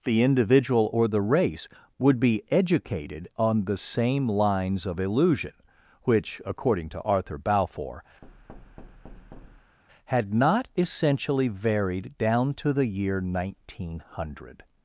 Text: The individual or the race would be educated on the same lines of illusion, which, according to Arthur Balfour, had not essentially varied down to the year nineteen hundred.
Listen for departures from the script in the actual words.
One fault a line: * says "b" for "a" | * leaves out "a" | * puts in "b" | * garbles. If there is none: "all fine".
all fine